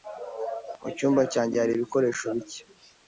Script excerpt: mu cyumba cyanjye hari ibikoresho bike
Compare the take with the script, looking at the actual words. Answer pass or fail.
pass